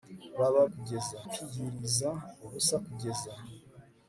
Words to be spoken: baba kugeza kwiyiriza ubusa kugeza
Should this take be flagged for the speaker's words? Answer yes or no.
no